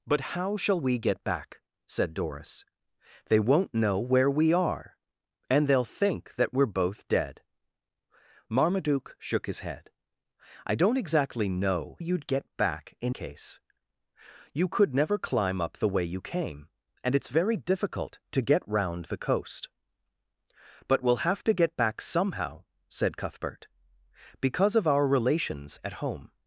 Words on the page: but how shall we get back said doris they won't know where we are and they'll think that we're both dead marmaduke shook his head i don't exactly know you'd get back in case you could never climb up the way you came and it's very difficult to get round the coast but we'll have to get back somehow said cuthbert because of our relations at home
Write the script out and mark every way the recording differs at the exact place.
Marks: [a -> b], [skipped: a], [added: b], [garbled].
but how shall we get back said doris they won't know where we are and they'll think that we're both dead marmaduke shook his head i don't exactly know you'd get back in case you could never climb up the way you came and it's very difficult to get round the coast but we'll have to get back somehow said cuthbert because of our relations at home